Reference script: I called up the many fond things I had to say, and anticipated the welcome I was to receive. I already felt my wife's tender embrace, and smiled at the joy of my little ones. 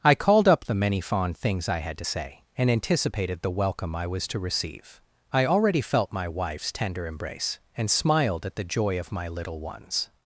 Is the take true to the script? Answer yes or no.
yes